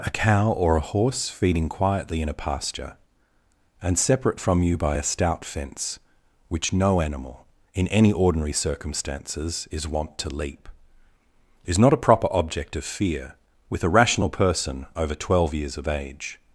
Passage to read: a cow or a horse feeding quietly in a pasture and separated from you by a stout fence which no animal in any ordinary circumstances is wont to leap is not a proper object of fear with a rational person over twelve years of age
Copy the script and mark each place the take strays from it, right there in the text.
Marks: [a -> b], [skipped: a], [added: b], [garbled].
a cow or a horse feeding quietly in a pasture and [separated -> separate] from you by a stout fence which no animal in any ordinary circumstances is wont to leap is not a proper object of fear with a rational person over twelve years of age